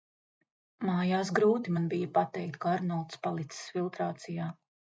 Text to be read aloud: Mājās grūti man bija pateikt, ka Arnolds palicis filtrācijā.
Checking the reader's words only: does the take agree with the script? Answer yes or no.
yes